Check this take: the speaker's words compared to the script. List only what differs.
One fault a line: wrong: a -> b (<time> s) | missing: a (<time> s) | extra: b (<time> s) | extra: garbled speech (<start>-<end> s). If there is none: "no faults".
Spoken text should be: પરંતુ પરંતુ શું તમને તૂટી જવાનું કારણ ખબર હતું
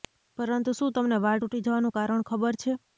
missing: પરંતુ (0.7 s)
extra: વાળ (1.2 s)
wrong: હતું -> છે (2.6 s)